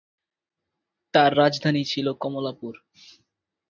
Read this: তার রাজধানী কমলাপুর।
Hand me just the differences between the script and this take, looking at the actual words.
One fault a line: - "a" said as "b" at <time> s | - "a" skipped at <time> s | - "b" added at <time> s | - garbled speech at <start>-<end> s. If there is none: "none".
- "ছিল" added at 1.8 s